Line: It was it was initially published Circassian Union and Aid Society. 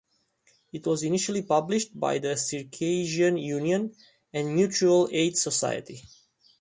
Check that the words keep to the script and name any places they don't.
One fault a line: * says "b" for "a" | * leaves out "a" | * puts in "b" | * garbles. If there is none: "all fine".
* says "initially published by the" for "it was initially published"
* puts in "Mutual"